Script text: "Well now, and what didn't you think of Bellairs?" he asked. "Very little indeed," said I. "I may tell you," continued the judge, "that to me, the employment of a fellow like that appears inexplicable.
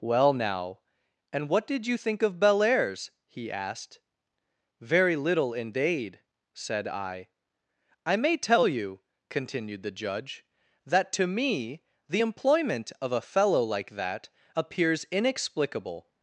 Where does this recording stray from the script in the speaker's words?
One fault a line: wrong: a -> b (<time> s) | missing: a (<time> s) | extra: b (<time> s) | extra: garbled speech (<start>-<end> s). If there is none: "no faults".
wrong: didn't -> did (1.7 s)